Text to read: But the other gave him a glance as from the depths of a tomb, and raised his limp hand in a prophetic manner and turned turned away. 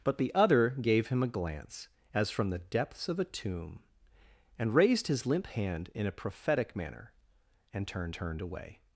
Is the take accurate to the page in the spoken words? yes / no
yes